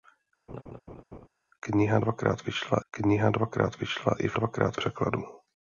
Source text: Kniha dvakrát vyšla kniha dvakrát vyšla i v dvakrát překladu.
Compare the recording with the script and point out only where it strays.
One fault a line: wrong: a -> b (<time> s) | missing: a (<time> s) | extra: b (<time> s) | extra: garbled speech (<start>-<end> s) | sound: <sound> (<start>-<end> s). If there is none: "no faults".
sound: laugh (0.5-1.3 s)